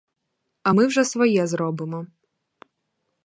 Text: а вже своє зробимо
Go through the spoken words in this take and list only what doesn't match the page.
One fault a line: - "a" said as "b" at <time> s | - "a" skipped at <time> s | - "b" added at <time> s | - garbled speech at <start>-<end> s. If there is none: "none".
- "ми" added at 0.7 s